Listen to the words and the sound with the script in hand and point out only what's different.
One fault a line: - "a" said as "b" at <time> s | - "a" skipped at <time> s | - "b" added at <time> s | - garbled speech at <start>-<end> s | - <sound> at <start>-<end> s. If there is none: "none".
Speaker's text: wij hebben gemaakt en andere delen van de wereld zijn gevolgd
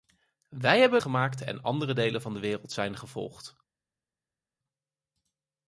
none